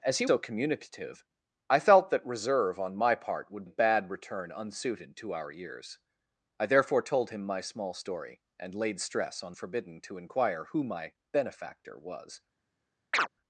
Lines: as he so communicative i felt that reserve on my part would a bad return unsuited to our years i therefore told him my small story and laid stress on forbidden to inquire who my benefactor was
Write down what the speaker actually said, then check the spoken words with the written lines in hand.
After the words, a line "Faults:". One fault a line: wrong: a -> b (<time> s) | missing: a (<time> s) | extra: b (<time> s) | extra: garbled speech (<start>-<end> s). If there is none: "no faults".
as he so communicative i felt that reserve on my part would a bad return unsuited to our years i therefore told him my small story and laid stress on forbidden to inquire who my benefactor was
Faults:
no faults